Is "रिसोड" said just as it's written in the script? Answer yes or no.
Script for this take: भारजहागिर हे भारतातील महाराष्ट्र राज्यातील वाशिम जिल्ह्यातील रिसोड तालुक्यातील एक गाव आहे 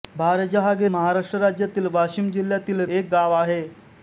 no